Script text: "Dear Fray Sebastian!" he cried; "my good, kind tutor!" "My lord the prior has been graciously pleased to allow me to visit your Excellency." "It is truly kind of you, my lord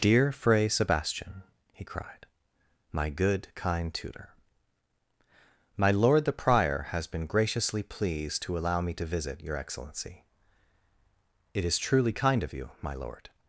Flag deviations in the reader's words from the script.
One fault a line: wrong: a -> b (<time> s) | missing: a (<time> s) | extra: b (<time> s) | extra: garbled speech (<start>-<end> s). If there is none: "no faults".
no faults